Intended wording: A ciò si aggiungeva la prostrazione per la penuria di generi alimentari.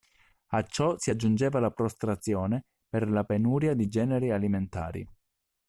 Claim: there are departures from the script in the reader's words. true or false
false